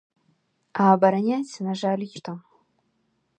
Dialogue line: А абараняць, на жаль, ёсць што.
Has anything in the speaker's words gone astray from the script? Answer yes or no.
yes